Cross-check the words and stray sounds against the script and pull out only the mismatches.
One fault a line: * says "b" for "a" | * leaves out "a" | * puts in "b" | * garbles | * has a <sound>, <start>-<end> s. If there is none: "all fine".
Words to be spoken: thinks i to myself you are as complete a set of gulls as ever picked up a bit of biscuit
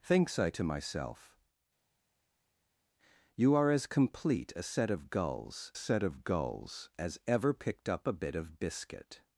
* puts in "set of gulls"